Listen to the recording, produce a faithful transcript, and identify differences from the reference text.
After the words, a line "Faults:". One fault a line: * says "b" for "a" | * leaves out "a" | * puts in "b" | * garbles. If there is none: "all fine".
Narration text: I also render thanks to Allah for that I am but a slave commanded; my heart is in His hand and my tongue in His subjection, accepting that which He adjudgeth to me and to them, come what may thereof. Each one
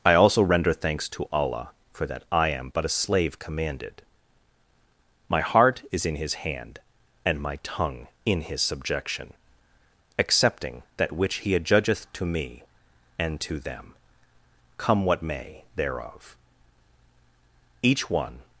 I also render thanks to Allah for that I am but a slave commanded; my heart is in His hand and my tongue in His subjection, accepting that which He adjudgeth to me and to them, come what may thereof. Each one
Faults:
all fine